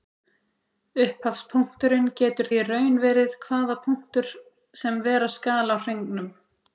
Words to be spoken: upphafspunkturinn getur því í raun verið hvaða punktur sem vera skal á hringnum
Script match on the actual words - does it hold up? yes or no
no